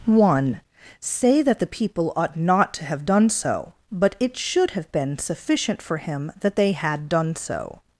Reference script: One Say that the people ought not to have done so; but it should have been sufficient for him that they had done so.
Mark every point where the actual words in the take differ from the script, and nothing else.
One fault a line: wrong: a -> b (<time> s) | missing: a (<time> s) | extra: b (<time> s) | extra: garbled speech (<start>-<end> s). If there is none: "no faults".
no faults